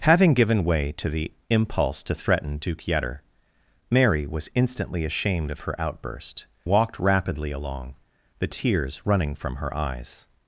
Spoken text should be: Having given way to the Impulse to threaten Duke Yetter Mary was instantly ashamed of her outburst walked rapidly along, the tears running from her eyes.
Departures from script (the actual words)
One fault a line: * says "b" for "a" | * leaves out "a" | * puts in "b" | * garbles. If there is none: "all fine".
all fine